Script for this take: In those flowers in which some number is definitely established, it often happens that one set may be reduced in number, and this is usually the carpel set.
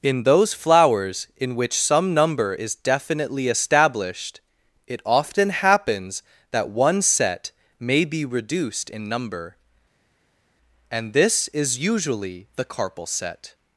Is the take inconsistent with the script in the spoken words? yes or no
no